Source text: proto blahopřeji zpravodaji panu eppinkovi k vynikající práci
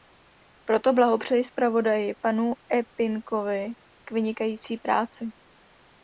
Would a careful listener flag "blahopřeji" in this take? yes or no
no